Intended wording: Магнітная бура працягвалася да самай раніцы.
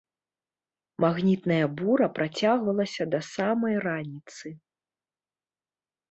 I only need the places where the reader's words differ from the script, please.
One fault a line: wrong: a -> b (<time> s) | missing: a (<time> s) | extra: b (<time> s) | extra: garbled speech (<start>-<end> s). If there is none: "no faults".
no faults